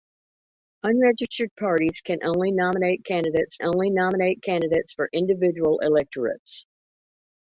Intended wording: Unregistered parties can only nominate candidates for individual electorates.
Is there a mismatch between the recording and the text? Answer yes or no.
yes